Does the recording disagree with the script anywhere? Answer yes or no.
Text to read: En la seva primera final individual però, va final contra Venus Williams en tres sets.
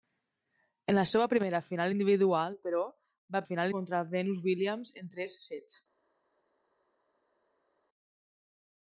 no